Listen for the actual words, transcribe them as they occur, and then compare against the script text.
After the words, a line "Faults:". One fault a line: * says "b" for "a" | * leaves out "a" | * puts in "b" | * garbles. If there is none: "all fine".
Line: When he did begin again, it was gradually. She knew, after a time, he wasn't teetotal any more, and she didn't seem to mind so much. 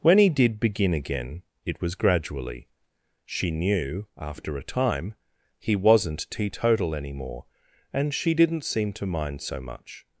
When he did begin again, it was gradually. She knew, after a time, he wasn't teetotal any more, and she didn't seem to mind so much.
Faults:
all fine